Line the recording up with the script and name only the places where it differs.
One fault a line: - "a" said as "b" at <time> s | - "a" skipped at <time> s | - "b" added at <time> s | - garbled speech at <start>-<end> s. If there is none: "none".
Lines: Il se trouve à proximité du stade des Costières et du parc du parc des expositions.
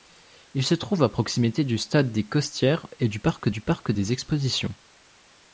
none